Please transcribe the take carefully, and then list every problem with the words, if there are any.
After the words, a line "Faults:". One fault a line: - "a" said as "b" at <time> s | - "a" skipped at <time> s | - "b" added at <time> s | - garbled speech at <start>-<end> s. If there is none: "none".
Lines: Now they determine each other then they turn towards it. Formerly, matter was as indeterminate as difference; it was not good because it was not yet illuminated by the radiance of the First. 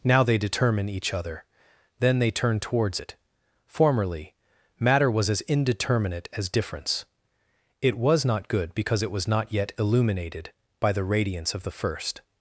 Now they determine each other then they turn towards it. Formerly, matter was as indeterminate as difference; it was not good because it was not yet illuminated by the radiance of the First.
Faults:
none